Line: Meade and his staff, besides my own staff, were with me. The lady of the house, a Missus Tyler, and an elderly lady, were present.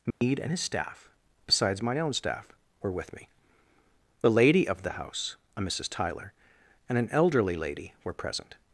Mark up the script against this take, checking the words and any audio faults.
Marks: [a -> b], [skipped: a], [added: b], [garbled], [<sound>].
Meade [dropout] and his staff, besides my own staff, were with me. The lady of the house, a Missus Tyler, and an elderly lady, were present.